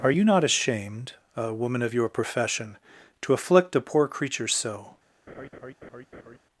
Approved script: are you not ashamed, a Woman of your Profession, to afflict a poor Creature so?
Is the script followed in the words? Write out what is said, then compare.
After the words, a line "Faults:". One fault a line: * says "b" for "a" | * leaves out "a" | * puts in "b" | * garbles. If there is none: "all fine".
are you not ashamed, a Woman of your Profession, to afflict a poor Creature so?
Faults:
all fine